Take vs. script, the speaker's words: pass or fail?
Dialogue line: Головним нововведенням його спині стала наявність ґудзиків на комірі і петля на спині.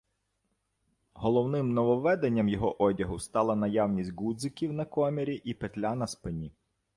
fail